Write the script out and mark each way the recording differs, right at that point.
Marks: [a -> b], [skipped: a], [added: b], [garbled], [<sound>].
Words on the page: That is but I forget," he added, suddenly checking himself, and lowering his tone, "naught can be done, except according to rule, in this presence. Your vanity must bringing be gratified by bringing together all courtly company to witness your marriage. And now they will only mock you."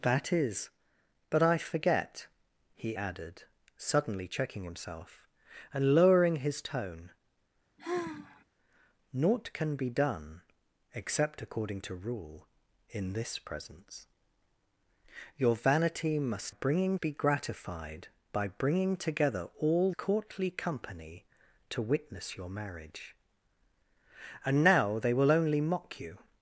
That is but I forget," he added, suddenly checking himself, and lowering his tone, [sigh] "naught can be done, except according to rule, in this presence. Your vanity must bringing be gratified by bringing together all courtly company to witness your marriage. And now they will only mock you."